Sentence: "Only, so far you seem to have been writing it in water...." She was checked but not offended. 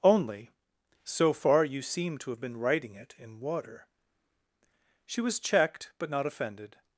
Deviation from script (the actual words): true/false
false